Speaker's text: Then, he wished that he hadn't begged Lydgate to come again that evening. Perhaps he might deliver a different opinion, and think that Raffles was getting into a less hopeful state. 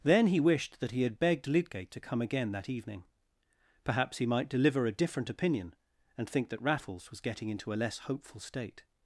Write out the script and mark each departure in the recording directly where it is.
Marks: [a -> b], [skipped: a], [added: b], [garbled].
Then, he wished that he [hadn't -> had] begged Lydgate to come again that evening. Perhaps he might deliver a different opinion, and think that Raffles was getting into a less hopeful state.